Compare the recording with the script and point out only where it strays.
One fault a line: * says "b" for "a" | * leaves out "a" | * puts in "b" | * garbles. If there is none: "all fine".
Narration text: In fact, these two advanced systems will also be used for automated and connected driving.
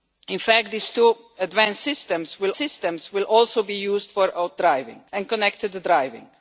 * puts in "systems will"
* says "driving" for "automated"